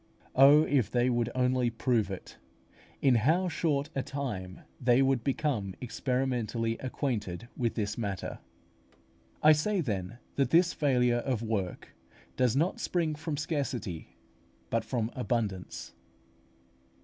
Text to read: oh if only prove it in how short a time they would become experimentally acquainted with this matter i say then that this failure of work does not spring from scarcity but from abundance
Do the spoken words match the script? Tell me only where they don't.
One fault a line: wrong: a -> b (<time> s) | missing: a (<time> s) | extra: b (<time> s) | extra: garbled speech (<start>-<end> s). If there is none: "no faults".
extra: they would (0.9 s)